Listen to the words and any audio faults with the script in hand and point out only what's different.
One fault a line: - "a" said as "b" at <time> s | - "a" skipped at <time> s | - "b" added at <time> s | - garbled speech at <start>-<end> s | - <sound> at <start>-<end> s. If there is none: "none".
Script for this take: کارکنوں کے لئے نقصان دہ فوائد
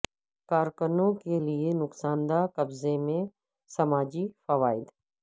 - "قبضے میں سماجی" added at 2.5 s